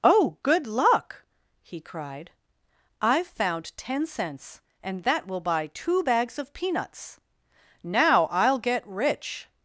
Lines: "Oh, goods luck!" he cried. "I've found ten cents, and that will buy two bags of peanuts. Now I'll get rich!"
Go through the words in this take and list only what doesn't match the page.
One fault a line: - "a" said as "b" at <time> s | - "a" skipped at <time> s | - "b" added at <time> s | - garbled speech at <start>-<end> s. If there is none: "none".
- "goods" said as "good" at 0.4 s